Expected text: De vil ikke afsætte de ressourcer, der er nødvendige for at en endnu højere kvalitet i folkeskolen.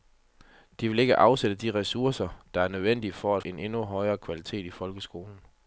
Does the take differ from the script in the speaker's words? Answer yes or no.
no